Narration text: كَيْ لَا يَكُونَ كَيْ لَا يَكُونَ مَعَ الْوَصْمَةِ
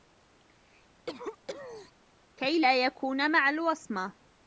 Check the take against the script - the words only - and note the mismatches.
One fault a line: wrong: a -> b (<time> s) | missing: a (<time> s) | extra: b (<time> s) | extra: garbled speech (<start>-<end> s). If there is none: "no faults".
missing: كَيْ لَا يَكُونَ (3.3 s)